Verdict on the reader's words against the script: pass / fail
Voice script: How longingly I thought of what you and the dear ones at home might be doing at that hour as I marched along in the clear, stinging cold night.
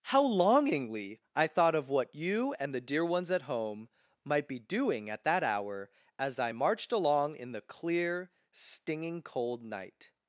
pass